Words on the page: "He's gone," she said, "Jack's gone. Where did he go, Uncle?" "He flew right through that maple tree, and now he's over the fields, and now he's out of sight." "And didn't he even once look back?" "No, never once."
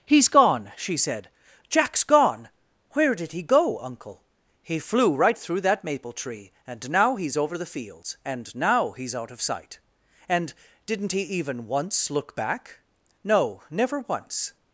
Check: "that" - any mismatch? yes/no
no